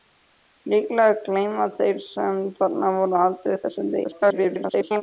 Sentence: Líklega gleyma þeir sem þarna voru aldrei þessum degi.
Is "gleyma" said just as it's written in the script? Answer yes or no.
yes